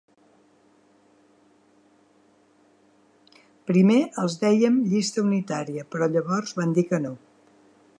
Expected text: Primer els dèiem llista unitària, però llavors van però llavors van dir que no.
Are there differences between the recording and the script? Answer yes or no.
yes